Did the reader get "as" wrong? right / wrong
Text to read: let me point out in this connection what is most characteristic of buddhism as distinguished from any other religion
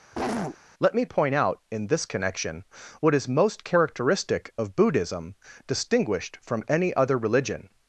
wrong